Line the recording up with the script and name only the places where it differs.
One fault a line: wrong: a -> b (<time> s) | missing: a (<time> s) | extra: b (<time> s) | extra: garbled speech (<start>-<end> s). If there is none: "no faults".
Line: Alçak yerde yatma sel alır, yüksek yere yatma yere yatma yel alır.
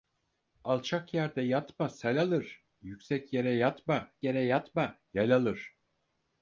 no faults